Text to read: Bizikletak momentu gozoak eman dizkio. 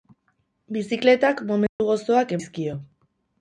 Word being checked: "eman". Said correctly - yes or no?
no